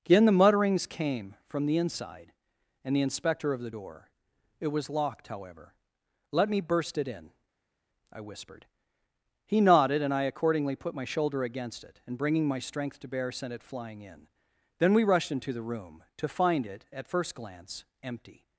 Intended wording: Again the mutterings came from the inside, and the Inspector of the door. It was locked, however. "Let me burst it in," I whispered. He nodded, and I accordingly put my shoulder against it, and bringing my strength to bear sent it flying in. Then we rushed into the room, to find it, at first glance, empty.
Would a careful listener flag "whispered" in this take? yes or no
no